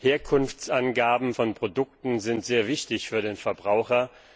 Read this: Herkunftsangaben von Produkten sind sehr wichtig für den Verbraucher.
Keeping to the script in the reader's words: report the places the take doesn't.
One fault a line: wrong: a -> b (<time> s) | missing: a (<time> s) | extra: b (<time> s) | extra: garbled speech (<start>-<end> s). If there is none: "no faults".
no faults